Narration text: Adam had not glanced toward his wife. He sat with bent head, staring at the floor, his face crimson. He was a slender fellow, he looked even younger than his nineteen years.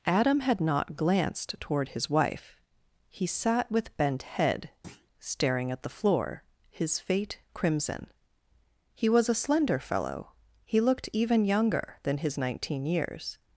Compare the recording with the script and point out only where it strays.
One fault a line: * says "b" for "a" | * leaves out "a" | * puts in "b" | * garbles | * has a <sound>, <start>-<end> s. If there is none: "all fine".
* has a thud, 4.8-5.1 s
* says "fate" for "face"